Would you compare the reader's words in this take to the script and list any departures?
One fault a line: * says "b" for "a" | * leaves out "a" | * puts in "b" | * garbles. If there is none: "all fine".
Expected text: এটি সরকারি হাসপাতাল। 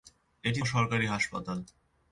all fine